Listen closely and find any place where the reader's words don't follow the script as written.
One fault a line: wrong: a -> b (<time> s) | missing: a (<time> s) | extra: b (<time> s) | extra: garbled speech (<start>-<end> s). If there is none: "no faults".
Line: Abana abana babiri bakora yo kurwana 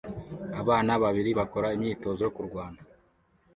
missing: abana (0.9 s)
extra: imyitozo (1.8 s)